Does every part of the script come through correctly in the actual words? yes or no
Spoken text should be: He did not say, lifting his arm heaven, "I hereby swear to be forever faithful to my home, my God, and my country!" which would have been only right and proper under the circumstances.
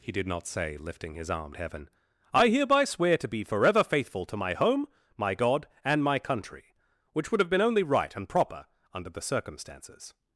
yes